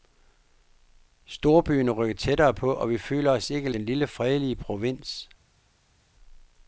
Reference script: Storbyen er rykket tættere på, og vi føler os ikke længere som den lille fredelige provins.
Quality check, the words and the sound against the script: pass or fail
fail